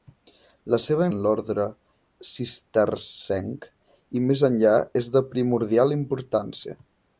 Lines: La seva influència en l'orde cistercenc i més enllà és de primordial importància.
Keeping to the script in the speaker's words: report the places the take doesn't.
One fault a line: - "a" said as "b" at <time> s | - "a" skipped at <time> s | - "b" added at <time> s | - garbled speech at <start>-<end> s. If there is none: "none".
- "influència" skipped at 1.1 s